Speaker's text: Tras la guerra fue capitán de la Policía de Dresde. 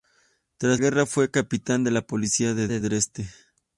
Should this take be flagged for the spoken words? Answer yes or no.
yes